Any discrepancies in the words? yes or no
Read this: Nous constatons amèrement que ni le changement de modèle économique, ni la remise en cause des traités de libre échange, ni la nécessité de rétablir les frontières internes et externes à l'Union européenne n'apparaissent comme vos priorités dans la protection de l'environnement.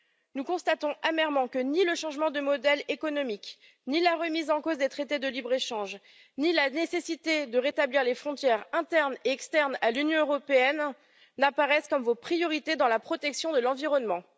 no